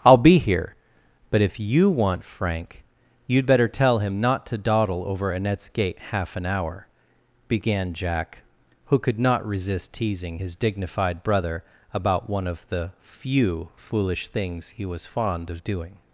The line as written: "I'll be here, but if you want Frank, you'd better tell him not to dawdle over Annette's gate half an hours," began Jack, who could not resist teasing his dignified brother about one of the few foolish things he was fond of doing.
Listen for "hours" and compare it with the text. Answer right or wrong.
wrong